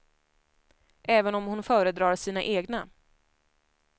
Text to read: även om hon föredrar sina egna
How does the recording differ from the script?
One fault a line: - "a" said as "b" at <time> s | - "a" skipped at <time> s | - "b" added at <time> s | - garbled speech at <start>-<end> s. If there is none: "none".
none